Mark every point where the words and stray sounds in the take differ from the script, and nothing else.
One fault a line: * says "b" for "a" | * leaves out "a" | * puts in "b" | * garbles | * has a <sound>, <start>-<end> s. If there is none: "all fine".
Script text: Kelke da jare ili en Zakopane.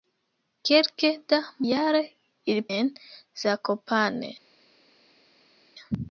all fine